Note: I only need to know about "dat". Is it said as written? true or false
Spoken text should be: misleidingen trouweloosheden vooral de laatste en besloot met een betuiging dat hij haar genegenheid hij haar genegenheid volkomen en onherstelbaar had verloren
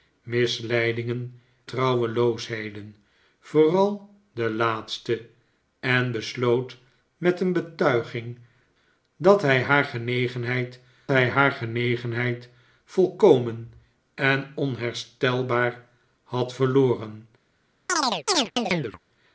true